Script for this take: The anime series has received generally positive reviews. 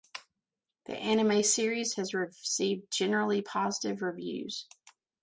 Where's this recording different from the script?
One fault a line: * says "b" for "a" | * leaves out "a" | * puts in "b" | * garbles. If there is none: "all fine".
all fine